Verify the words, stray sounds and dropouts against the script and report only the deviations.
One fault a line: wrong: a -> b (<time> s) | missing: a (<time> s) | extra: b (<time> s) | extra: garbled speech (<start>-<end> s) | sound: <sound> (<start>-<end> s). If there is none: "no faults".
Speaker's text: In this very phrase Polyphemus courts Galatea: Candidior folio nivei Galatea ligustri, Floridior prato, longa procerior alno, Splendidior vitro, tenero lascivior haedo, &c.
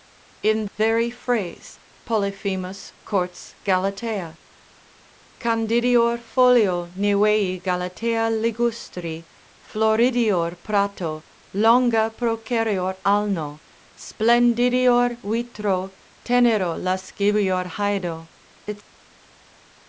missing: this (0.7 s)